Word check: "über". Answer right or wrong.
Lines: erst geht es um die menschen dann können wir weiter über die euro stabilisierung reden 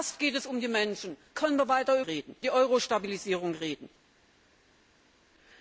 wrong